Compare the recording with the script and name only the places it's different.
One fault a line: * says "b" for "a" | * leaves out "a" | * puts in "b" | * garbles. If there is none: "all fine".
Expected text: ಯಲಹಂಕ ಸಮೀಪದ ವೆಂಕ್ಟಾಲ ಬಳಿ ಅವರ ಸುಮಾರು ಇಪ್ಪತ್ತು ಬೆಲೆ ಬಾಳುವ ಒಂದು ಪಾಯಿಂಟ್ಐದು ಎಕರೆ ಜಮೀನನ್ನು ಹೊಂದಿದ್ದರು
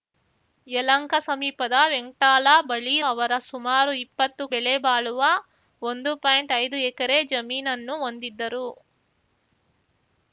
all fine